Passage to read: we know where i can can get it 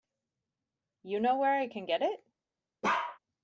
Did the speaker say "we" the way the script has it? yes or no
no